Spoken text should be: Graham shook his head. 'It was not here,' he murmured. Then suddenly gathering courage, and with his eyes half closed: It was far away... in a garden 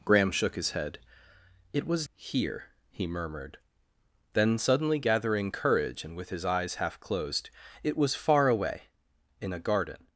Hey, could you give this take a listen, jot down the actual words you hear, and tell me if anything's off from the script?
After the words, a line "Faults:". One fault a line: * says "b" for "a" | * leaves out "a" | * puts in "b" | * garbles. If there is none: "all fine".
Graham shook his head. 'It was here,' he murmured. Then suddenly gathering courage, and with his eyes half closed: It was far away... in a garden
Faults:
* leaves out "not"